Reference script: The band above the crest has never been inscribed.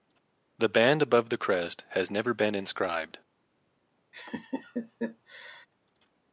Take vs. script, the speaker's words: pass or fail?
pass